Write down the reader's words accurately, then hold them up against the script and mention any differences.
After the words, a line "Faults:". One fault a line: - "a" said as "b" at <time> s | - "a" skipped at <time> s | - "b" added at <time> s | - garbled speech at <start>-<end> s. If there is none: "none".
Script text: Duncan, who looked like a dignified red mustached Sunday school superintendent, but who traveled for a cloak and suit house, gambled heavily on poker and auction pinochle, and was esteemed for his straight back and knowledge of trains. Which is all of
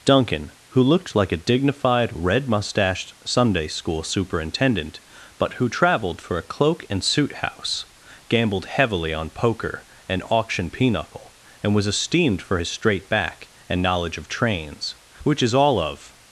Duncan, who looked like a dignified red mustached Sunday school superintendent, but who traveled for a cloak and suit house, gambled heavily on poker and auction pinochle, and was esteemed for his straight back and knowledge of trains. Which is all of
Faults:
none